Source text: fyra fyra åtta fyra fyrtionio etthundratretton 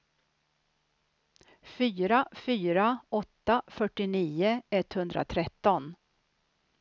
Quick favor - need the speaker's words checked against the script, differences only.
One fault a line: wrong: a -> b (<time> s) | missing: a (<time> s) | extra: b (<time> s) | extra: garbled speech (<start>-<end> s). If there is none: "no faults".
missing: fyra (3.6 s)